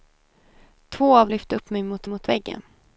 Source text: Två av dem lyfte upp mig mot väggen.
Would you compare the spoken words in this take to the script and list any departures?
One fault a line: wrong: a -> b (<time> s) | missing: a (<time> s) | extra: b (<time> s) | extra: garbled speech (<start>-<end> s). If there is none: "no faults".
missing: dem (1.3 s)
extra: mot (2.0 s)